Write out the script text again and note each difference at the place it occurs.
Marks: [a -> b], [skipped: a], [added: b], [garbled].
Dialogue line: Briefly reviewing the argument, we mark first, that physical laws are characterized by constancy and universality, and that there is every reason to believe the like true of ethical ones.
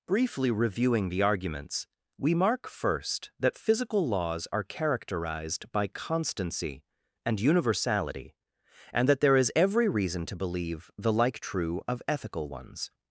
Briefly reviewing the [argument, -> arguments] we mark first, that physical laws are characterized by constancy and universality, and that there is every reason to believe the like true of ethical ones.